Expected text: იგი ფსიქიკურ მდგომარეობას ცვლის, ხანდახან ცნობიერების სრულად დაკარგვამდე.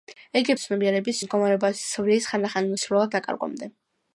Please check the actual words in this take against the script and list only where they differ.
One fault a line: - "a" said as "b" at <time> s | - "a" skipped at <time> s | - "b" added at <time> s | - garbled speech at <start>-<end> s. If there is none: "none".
- "ფსიქიკურ" said as "ცნობიერების" at 0.6 s
- "ცნობიერების" skipped at 2.7 s